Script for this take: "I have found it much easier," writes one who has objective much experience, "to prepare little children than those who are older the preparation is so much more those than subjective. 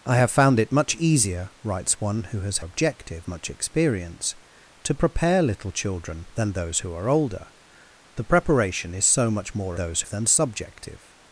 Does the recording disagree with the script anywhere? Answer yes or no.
no